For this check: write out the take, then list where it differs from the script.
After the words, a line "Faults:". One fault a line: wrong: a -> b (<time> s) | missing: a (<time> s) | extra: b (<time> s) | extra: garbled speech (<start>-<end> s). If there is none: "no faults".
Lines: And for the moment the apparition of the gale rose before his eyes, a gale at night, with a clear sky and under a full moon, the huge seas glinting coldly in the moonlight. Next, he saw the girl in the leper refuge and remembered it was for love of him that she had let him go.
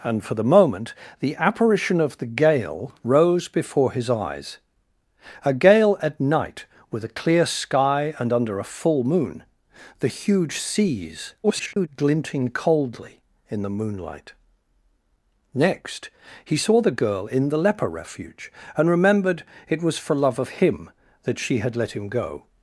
And for the moment the apparition of the gale rose before his eyes, a gale at night, with a clear sky and under a full moon, the huge seas [garbled] glinting coldly in the moonlight. Next, he saw the girl in the leper refuge and remembered it was for love of him that she had let him go.
Faults:
extra: garbled speech (11.4-11.9 s)